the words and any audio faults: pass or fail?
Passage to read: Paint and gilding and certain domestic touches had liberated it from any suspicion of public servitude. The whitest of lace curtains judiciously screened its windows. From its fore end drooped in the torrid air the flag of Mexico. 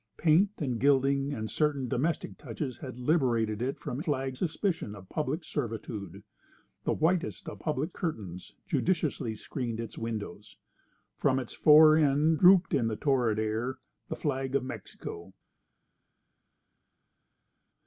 fail